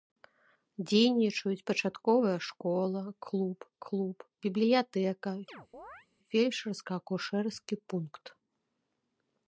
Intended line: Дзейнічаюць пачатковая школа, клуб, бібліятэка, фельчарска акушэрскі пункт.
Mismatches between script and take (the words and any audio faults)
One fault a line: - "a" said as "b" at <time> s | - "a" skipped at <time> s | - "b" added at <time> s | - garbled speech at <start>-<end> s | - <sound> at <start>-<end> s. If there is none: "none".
- "клуб" added at 3.9 s
- chirp at 5.5-6.1 s